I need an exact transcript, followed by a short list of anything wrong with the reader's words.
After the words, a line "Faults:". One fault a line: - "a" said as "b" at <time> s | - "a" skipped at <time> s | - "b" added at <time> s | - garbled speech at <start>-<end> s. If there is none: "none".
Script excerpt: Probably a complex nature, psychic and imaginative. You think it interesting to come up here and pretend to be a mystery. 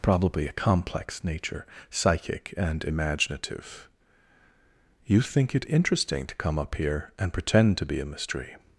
Probably a complex nature, psychic and imaginative. You think it interesting to come up here and pretend to be a mystery.
Faults:
none